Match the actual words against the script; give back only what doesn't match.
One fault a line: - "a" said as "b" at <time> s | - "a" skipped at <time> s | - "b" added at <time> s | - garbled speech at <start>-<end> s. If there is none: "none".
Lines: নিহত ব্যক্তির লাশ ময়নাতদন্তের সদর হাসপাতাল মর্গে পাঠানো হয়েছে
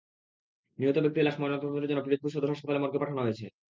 - "জন্য পিরোজপুর" added at 1.9 s